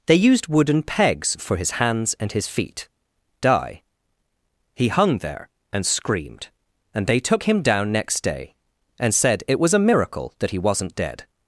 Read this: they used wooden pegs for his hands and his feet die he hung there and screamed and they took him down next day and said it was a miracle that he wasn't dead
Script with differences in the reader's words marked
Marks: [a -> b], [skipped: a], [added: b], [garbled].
they used wooden pegs for his hands and his feet die he hung there and screamed and they took him down next day and said it was a miracle that he wasn't dead